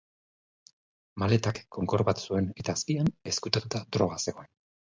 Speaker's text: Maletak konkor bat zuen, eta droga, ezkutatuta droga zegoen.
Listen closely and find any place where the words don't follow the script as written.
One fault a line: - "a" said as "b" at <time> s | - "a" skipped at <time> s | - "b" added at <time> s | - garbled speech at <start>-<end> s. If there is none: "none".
- "droga" said as "azpian" at 2.8 s